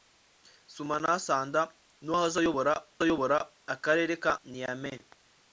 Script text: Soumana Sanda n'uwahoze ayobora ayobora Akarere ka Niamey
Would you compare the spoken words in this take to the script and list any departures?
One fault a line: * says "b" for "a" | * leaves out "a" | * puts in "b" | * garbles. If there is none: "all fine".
all fine